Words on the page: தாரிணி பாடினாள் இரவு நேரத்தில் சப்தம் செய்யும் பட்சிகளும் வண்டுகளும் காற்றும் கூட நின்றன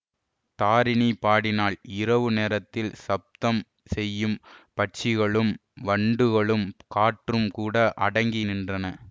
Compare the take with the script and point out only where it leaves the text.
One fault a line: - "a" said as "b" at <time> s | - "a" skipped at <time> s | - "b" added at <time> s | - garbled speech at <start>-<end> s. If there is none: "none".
- "அடங்கி" added at 8.1 s